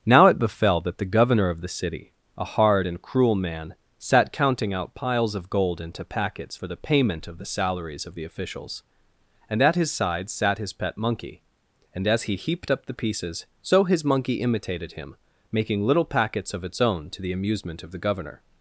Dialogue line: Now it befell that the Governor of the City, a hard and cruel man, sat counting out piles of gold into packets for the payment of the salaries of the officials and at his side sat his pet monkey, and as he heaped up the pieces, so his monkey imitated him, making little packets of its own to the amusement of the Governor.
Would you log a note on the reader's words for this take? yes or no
no